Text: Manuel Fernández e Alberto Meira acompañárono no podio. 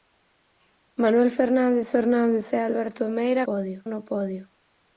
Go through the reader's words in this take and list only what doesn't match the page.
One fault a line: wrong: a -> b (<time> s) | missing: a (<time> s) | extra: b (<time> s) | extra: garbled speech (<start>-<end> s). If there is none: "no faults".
extra: Fernández (1.9 s)
wrong: acompañárono -> podio (3.5 s)